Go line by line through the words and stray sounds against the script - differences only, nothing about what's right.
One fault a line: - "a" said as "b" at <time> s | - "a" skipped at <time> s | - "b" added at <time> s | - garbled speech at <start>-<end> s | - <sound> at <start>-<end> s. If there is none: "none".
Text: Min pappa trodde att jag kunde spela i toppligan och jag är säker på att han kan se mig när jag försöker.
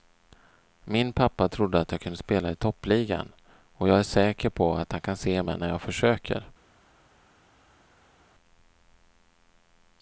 none